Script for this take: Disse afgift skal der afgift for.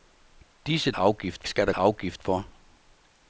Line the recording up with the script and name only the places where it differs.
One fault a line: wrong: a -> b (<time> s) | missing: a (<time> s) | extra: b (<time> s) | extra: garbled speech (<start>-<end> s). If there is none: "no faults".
no faults